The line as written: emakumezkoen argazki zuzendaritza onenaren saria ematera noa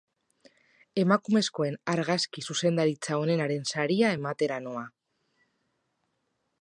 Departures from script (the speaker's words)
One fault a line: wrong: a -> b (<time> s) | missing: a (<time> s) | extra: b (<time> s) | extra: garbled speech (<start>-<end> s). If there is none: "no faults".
no faults